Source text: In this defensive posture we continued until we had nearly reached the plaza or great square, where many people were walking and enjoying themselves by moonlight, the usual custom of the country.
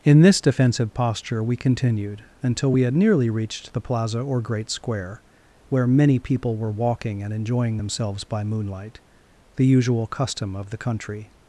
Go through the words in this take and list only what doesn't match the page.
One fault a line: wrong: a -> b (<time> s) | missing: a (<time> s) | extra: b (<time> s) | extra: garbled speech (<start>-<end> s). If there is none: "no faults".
no faults